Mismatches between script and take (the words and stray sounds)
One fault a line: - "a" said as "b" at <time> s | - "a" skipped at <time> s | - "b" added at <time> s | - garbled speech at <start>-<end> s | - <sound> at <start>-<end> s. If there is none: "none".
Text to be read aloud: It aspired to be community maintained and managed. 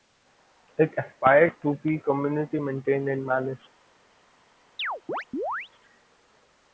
- chirp at 4.8-5.7 s